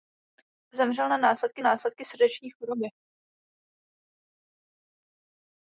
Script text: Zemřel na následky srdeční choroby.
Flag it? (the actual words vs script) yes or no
yes